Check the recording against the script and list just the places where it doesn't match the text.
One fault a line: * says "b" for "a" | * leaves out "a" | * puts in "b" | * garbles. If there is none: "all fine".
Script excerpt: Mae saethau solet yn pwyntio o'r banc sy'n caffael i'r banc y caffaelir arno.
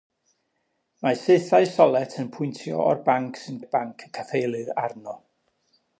* leaves out "caffael"